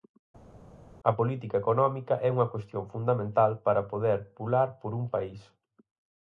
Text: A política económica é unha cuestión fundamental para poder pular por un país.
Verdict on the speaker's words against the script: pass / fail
pass